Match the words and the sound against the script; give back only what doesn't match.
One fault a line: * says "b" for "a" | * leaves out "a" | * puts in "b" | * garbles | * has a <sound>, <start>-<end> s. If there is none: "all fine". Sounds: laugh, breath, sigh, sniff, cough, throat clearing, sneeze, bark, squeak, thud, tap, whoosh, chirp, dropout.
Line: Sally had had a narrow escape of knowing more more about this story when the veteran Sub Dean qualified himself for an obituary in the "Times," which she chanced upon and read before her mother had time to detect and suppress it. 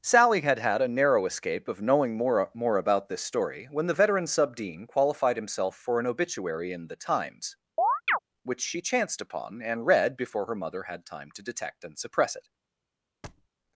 * has a chirp, 7.8-8.2 s
* has a thud, 13.2-13.5 s